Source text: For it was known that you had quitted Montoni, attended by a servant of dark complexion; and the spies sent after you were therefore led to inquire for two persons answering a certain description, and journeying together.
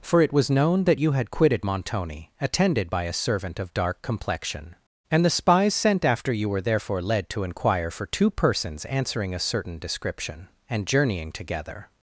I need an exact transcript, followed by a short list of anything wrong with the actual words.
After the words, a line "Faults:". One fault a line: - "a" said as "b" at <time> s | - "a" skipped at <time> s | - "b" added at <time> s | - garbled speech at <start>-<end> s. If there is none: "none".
For it was known that you had quitted Montoni, attended by a servant of dark complexion; and the spies sent after you were therefore led to inquire for two persons answering a certain description, and journeying together.
Faults:
none